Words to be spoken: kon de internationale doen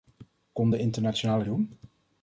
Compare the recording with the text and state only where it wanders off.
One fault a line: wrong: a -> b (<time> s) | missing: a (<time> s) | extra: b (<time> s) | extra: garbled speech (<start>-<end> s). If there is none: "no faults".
no faults